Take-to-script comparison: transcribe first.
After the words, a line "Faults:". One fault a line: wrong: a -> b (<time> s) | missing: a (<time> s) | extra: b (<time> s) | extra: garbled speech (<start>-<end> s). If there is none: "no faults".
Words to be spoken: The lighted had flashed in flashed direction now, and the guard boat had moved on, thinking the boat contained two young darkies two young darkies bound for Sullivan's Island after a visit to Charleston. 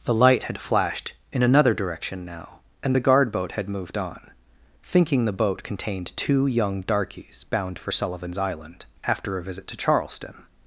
The light had flashed in another direction now, and the guard boat had moved on, thinking the boat contained two young darkies bound for Sullivan's Island after a visit to Charleston.
Faults:
wrong: lighted -> light (0.1 s)
wrong: flashed -> another (1.4 s)
missing: two young darkies (7.4 s)